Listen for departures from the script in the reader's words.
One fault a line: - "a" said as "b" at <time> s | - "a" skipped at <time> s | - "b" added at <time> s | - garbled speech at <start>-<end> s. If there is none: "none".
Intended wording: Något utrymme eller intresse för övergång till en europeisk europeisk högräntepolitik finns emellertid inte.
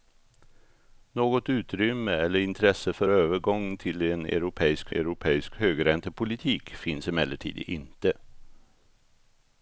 none